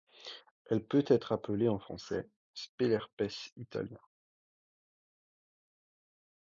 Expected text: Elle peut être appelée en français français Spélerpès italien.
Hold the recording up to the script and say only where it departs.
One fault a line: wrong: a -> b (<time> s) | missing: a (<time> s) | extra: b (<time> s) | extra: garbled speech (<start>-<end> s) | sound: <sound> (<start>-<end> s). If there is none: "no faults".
missing: français (2.3 s)